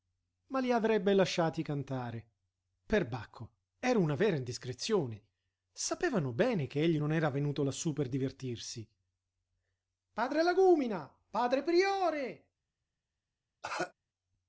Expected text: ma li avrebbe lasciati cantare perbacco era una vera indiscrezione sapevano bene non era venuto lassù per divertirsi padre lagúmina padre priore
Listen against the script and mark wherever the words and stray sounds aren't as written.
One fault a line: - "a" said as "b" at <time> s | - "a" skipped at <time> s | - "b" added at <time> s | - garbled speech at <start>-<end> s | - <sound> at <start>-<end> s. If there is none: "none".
- "che egli" added at 6.7 s
- cough at 13.6-13.9 s